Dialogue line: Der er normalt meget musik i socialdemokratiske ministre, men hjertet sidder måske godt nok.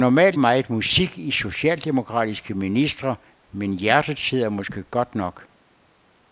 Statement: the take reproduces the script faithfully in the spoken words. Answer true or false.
true